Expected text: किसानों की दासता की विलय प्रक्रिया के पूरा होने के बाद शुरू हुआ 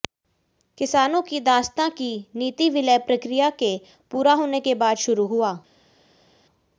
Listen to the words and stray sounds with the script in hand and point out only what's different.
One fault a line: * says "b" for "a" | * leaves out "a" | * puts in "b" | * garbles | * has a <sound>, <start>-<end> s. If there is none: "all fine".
* puts in "नीति"